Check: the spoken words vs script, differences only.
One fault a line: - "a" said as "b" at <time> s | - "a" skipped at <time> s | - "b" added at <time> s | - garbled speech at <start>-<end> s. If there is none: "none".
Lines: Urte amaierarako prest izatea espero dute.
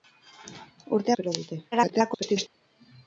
- "amaierarako prest izatea" skipped at 1.1 s
- garbled speech at 1.7-2.5 s